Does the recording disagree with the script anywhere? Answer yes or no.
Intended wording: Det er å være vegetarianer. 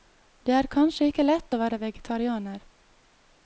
yes